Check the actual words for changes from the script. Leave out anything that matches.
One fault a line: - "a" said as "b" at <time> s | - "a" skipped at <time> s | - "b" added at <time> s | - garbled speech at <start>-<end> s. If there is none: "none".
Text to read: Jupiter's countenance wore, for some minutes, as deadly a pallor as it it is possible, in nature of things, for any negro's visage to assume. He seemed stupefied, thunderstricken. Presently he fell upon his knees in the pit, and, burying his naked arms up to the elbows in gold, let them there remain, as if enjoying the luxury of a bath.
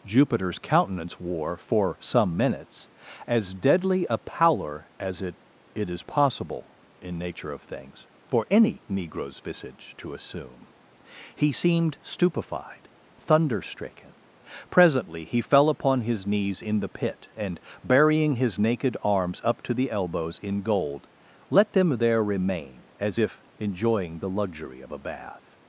none